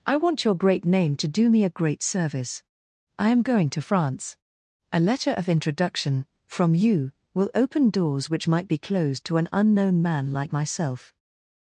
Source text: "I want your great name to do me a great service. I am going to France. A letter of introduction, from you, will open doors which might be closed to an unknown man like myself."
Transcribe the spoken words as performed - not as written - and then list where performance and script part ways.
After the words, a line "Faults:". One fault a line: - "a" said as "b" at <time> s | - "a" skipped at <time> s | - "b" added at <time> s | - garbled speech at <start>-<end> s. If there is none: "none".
"I want your great name to do me a great service. I am going to France. A letter of introduction, from you, will open doors which might be closed to an unknown man like myself."
Faults:
none